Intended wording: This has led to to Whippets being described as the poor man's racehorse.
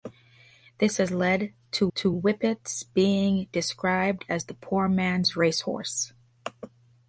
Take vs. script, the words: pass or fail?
pass